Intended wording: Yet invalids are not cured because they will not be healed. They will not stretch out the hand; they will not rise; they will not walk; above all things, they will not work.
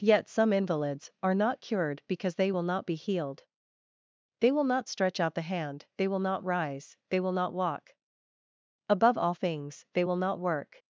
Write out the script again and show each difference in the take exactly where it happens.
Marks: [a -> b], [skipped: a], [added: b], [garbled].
Yet [added: some] invalids are not cured because they will not be healed. They will not stretch out the hand; they will not rise; they will not walk; above all things, they will not work.